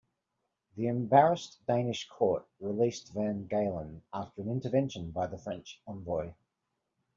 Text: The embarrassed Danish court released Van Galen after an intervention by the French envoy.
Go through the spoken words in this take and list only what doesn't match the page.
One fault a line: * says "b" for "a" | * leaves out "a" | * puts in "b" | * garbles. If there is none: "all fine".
all fine